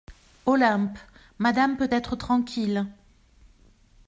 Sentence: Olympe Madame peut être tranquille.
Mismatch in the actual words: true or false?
false